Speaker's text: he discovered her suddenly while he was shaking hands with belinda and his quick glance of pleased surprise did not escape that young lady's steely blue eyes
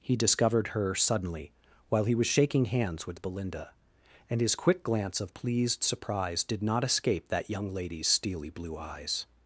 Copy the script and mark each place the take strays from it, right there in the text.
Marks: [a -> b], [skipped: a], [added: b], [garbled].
he discovered her suddenly while he was shaking hands with belinda and his quick glance of pleased surprise did not escape that young lady's steely blue eyes